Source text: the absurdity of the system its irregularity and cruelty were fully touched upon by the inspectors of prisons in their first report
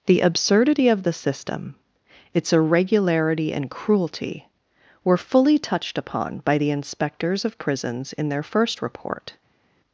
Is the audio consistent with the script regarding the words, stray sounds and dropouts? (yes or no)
yes